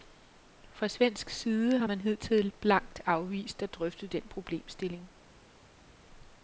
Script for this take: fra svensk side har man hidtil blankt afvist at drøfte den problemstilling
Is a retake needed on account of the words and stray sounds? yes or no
no